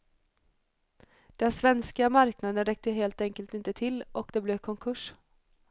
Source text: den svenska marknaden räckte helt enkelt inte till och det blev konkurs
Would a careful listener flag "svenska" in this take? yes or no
no